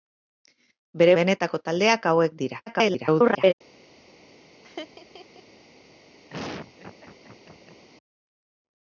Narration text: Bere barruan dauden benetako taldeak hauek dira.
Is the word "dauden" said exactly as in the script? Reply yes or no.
no